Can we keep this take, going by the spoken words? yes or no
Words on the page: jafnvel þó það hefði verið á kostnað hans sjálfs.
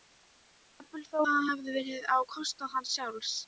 yes